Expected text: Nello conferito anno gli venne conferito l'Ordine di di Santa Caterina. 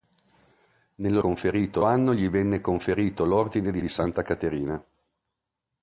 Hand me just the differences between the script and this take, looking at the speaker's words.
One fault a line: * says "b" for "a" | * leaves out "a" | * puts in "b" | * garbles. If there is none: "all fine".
all fine